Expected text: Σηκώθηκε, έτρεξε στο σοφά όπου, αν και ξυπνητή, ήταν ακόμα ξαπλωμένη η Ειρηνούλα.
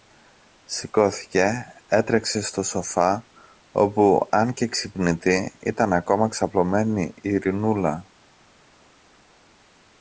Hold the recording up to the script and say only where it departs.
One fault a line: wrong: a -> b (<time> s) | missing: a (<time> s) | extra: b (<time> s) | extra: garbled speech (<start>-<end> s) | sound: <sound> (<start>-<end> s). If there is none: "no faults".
no faults